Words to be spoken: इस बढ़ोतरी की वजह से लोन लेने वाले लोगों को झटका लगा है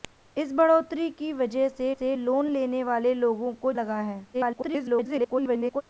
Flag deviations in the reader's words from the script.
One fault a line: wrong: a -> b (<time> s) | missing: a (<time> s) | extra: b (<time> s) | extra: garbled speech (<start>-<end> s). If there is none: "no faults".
extra: से (1.9 s)
missing: झटका (3.7 s)
extra: garbled speech (4.3-5.8 s)